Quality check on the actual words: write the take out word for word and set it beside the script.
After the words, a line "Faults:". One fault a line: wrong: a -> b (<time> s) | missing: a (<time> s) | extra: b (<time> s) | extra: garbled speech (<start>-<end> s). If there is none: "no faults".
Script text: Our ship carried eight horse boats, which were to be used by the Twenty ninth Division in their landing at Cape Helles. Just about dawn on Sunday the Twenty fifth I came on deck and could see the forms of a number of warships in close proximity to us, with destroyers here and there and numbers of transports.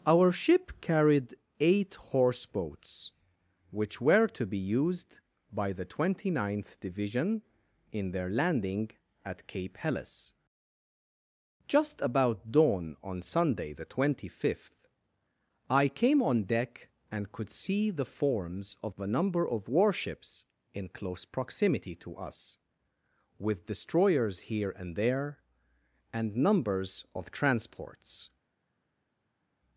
Our ship carried eight horse boats, which were to be used by the Twenty ninth Division in their landing at Cape Helles. Just about dawn on Sunday the Twenty fifth I came on deck and could see the forms of a number of warships in close proximity to us, with destroyers here and there and numbers of transports.
Faults:
no faults